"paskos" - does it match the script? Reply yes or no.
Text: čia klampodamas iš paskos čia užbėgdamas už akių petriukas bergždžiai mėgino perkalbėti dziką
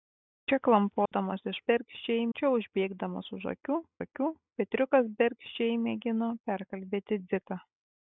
no